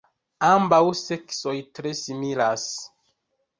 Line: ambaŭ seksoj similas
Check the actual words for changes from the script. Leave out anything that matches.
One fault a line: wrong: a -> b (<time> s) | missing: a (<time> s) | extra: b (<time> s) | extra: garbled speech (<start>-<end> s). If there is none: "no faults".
extra: tre (1.8 s)